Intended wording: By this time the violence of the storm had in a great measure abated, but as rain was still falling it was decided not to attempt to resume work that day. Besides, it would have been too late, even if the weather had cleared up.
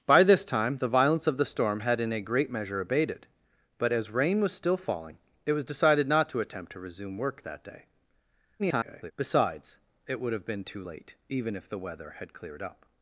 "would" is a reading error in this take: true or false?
false